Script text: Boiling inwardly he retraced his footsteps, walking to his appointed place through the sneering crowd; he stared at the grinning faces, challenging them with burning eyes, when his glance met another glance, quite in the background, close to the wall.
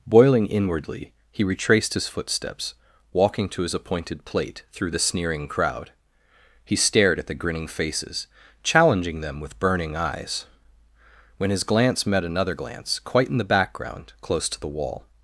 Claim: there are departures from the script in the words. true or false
true